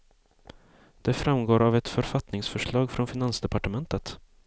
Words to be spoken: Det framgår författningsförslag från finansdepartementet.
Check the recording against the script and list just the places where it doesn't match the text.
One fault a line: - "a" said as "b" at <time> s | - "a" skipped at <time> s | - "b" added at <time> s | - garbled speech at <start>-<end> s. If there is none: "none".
- "av ett" added at 1.6 s